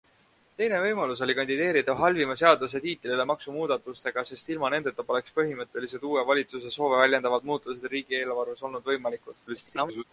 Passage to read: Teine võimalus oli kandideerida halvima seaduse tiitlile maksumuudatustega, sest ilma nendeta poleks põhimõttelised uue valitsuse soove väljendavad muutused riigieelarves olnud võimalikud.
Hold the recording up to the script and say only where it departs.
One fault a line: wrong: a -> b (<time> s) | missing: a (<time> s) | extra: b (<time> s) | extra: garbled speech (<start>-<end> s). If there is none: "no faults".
extra: garbled speech (9.5-10.0 s)